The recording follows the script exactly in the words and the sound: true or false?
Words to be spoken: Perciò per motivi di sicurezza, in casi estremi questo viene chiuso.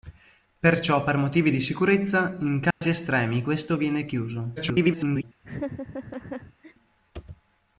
false